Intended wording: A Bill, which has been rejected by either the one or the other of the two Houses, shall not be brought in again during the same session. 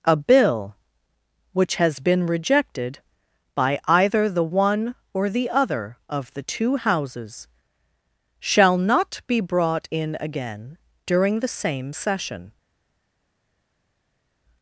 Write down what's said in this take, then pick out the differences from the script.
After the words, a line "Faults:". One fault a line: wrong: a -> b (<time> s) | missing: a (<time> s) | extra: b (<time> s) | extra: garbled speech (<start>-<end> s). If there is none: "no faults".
A Bill, which has been rejected by either the one or the other of the two Houses, shall not be brought in again during the same session.
Faults:
no faults